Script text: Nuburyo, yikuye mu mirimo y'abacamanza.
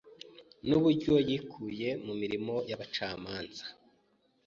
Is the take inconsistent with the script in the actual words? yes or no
no